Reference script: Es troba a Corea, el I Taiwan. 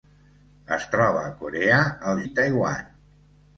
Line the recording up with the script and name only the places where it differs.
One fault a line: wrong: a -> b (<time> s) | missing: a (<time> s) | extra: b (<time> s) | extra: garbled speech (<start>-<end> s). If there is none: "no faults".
no faults